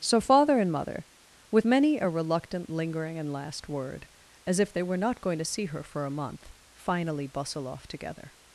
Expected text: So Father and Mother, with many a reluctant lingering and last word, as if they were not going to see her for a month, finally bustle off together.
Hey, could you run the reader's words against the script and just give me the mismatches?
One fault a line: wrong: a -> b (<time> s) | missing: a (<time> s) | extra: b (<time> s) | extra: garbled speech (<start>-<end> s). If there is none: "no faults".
no faults